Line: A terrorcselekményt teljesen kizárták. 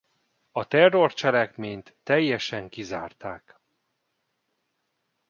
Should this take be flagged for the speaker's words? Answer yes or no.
no